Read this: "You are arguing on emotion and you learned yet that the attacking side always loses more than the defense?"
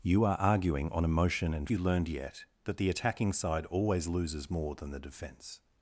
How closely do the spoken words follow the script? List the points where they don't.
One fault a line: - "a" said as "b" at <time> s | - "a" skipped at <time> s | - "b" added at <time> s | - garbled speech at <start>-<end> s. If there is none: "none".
none